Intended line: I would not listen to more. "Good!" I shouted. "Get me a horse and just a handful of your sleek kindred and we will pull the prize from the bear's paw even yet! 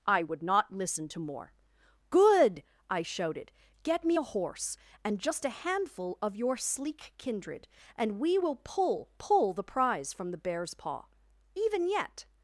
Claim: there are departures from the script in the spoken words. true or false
true